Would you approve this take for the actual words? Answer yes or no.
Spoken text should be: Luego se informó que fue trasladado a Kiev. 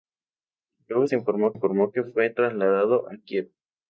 no